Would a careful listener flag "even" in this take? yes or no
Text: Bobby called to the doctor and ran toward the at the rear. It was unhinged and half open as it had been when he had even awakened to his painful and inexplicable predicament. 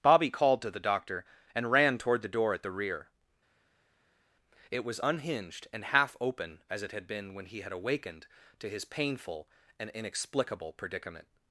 yes